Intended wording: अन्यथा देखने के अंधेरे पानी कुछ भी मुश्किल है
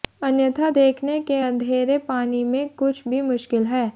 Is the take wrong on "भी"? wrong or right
right